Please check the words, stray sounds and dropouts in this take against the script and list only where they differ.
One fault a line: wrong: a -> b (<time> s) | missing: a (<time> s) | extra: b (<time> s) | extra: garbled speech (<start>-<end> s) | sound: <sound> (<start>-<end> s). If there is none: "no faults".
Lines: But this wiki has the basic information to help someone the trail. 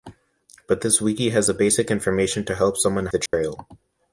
sound: dropout (3.3-3.3 s)